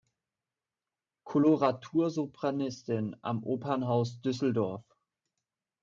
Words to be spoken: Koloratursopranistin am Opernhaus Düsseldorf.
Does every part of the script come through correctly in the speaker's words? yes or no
yes